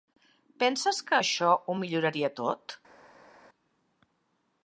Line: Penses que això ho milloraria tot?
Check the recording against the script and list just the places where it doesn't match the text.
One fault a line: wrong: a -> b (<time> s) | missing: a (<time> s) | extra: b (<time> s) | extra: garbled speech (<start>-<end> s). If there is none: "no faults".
no faults